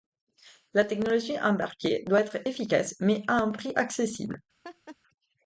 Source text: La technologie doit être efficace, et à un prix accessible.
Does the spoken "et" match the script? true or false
false